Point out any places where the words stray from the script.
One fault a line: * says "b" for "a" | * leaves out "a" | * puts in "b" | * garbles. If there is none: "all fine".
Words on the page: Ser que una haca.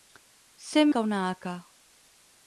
all fine